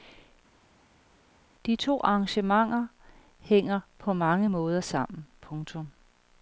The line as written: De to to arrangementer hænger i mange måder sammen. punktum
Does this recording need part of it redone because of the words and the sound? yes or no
yes